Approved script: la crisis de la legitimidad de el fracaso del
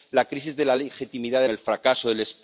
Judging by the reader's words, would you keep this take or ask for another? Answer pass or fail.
pass